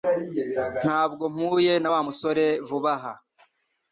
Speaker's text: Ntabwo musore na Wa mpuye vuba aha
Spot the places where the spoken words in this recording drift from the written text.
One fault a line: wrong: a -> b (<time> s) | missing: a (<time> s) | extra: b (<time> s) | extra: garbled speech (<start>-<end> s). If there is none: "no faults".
wrong: musore -> mpuye (1.4 s)
wrong: mpuye -> musore (2.0 s)